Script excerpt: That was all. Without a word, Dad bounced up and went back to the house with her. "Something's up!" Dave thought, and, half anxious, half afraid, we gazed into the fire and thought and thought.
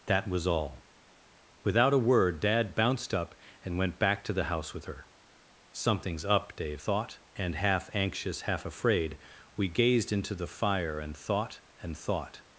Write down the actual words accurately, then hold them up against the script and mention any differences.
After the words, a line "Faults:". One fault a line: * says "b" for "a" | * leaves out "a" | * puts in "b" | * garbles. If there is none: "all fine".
That was all. Without a word, Dad bounced up and went back to the house with her. "Something's up!" Dave thought, and, half anxious, half afraid, we gazed into the fire and thought and thought.
Faults:
all fine